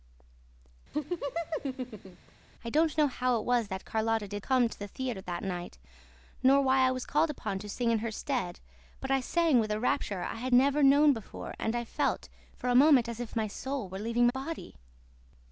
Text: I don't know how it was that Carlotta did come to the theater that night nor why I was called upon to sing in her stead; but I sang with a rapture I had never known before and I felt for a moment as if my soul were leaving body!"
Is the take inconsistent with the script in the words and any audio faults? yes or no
yes